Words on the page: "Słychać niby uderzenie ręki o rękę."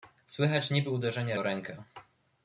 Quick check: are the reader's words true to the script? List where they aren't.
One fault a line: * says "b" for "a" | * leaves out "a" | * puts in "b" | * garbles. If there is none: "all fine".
* leaves out "ręki"